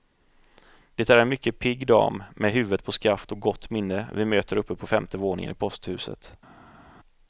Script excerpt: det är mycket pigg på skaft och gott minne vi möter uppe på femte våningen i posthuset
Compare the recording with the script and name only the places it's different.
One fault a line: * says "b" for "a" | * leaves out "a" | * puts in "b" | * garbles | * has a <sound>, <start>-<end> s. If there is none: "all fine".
* puts in "en"
* puts in "dam med huvudet"